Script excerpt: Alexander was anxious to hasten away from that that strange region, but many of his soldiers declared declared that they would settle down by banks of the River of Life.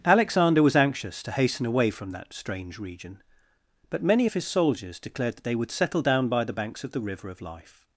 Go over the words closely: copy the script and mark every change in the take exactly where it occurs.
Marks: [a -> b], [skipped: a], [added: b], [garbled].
Alexander was anxious to hasten away from that [skipped: that] strange region, but many of his soldiers declared [skipped: declared] that they would settle down by [added: the] banks of the River of Life.